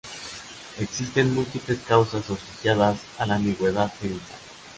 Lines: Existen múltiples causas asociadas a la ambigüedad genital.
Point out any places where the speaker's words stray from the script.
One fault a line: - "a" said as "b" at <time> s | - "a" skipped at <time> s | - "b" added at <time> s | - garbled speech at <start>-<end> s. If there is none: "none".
none